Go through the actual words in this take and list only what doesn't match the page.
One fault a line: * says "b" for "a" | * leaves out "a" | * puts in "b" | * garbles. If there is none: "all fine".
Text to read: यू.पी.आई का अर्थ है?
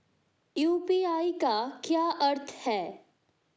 * puts in "क्या"